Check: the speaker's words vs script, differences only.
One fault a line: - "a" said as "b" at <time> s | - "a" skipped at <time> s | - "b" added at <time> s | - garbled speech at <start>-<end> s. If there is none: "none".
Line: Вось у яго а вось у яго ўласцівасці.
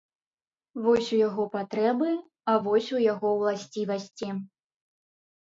- "патрэбы" added at 1.6 s